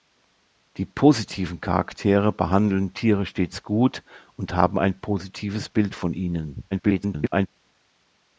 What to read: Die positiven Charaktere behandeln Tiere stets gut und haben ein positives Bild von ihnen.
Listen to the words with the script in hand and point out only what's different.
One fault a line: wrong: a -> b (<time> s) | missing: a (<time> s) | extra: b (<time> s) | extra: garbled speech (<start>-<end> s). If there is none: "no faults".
extra: garbled speech (6.7-7.5 s)